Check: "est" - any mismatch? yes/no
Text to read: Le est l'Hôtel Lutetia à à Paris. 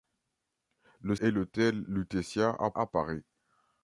no